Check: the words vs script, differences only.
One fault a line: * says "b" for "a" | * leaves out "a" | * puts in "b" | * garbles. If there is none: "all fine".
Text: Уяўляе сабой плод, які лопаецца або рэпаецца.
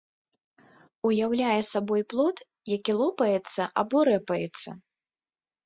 all fine